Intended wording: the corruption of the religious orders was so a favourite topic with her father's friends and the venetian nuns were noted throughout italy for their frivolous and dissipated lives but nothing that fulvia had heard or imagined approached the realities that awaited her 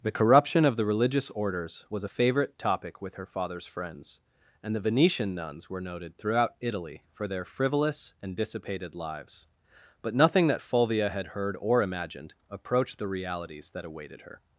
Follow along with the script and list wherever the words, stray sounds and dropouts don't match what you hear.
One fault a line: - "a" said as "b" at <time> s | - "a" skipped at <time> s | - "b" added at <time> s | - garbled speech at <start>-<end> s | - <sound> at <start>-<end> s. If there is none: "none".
- "so" skipped at 2.0 s